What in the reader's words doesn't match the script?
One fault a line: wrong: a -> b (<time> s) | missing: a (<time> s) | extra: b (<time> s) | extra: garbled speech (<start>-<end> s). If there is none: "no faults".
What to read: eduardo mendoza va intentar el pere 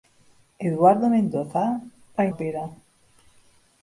missing: intentar (2.3 s)